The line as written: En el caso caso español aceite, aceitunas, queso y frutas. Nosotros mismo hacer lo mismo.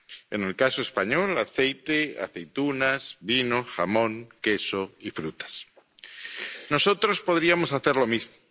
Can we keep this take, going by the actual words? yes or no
no